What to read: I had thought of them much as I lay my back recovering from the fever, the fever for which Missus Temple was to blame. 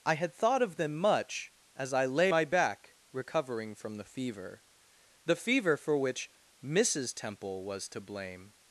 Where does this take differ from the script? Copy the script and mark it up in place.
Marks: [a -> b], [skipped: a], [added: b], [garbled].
I had thought of them much as I lay my back recovering from the fever, the fever for which Missus Temple was to blame.